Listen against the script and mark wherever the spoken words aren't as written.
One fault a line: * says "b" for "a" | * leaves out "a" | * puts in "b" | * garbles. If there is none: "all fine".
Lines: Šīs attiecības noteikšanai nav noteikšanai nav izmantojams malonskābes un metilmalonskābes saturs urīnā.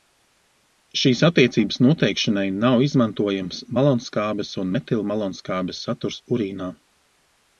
* leaves out "noteikšanai nav"